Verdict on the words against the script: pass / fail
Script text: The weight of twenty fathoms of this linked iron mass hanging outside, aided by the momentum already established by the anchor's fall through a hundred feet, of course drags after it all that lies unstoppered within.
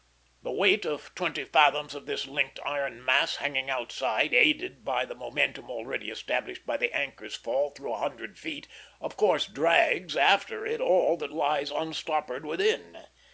pass